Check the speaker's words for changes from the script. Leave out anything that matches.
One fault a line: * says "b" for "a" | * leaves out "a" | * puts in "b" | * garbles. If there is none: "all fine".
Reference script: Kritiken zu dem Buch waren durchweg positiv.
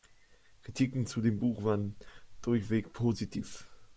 all fine